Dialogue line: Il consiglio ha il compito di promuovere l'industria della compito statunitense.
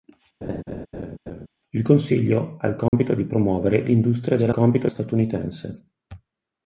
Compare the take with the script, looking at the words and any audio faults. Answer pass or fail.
fail